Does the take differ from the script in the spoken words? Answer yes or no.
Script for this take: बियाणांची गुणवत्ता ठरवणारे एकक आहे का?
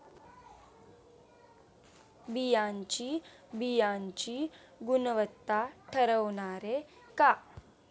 yes